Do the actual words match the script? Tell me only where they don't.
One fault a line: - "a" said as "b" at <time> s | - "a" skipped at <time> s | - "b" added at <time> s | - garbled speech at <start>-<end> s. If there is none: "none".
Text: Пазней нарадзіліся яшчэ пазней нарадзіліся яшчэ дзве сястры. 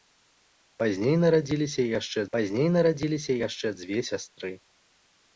none